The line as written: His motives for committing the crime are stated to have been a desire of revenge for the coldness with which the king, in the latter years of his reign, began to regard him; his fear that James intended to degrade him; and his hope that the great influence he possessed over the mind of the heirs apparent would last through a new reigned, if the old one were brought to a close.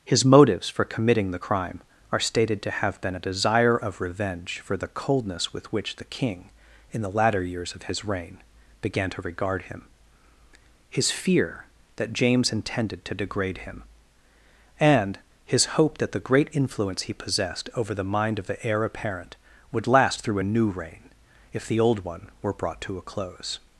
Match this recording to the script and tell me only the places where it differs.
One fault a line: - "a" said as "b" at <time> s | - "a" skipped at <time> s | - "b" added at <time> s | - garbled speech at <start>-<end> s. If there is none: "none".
- "heirs" said as "heir" at 18.6 s
- "reigned" said as "reign" at 20.7 s